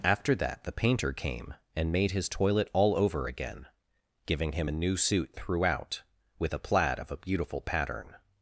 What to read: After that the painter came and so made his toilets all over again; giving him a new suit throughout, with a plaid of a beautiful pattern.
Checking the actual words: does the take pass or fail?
fail